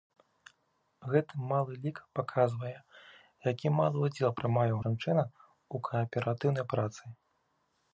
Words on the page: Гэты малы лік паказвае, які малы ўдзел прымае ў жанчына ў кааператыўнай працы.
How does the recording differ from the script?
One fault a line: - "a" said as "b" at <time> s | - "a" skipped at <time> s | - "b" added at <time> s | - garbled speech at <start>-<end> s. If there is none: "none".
none